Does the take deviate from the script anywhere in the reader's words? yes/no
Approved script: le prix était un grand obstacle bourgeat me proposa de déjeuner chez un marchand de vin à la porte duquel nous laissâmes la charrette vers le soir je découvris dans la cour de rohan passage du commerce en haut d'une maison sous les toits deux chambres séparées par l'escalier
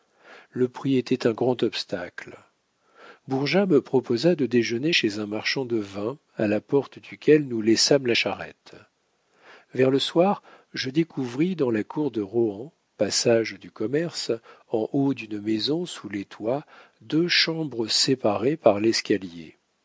no